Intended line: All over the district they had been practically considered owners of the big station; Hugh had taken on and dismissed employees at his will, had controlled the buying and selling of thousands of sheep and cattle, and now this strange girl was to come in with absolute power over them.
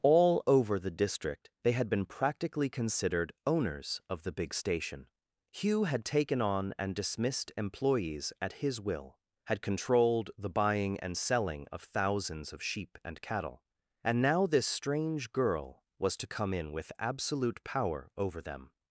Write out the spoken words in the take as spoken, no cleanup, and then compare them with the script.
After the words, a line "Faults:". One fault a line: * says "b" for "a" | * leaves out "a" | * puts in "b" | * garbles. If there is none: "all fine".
All over the district they had been practically considered owners of the big station; Hugh had taken on and dismissed employees at his will, had controlled the buying and selling of thousands of sheep and cattle, and now this strange girl was to come in with absolute power over them.
Faults:
all fine